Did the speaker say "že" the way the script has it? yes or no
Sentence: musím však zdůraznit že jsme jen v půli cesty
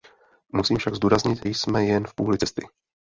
no